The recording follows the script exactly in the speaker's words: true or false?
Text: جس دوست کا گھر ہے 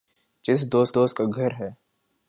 false